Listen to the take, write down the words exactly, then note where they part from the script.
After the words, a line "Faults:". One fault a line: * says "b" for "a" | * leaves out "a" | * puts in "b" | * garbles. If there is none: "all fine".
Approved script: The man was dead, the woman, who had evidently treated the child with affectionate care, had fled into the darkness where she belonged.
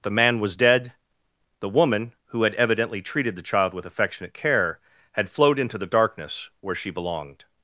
The man was dead, the woman, who had evidently treated the child with affectionate care, had flowed into the darkness where she belonged.
Faults:
* says "flowed" for "fled"